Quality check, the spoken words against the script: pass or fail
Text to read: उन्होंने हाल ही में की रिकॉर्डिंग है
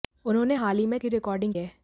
pass